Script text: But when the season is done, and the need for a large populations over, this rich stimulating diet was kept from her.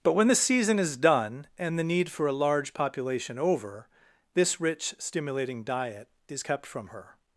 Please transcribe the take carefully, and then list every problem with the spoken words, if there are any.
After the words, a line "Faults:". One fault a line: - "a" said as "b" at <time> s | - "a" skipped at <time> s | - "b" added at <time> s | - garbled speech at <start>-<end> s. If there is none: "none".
But when the season is done, and the need for a large population over, this rich stimulating diet is kept from her.
Faults:
- "populations" said as "population" at 2.7 s
- "was" said as "is" at 6.3 s